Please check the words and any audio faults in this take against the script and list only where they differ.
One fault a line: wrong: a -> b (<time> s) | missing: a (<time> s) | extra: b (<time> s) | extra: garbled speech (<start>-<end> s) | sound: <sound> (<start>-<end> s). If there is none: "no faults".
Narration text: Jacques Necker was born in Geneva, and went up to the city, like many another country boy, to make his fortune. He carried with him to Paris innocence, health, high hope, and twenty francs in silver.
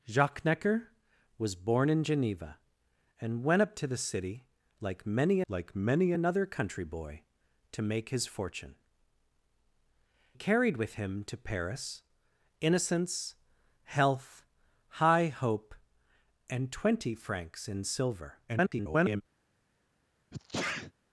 extra: like many (5.5 s)
missing: He (8.7 s)
extra: garbled speech (18.5-19.2 s)
sound: sneeze (20.3-20.9 s)